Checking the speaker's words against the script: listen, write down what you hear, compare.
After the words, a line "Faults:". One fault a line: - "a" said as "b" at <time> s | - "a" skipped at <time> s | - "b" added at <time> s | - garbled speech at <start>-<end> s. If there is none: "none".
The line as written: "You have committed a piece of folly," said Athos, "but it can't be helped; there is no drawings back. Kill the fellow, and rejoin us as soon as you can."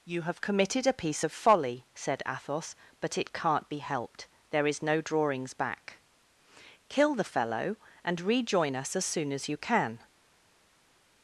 "You have committed a piece of folly," said Athos, "but it can't be helped; there is no drawings back. Kill the fellow, and rejoin us as soon as you can."
Faults:
none